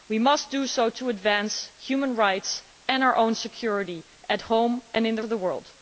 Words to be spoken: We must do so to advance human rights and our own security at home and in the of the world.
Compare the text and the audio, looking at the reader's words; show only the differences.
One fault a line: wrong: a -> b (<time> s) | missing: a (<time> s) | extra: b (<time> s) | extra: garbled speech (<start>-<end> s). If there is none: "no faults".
no faults